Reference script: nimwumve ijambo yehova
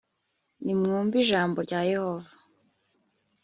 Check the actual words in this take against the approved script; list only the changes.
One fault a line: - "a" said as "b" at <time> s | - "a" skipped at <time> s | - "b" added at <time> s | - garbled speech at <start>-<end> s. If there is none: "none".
- "rya" added at 1.6 s